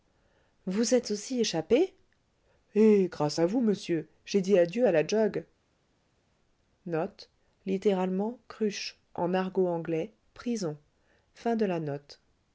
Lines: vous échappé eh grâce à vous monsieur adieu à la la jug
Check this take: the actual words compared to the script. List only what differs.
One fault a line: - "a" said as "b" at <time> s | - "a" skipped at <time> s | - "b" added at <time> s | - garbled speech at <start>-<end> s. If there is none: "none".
- "êtes aussi" added at 0.9 s
- "j'ai dit" added at 4.3 s
- "la" skipped at 5.1 s